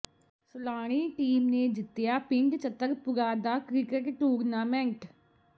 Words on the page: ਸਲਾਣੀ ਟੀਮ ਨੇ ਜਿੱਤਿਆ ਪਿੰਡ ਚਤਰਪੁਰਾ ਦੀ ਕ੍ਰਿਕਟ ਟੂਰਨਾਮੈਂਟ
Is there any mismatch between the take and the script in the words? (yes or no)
yes